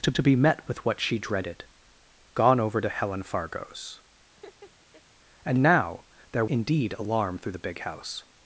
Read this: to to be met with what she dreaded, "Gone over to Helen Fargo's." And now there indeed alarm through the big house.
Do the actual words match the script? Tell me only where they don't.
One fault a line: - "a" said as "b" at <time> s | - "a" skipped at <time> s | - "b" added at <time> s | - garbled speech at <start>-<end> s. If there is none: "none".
none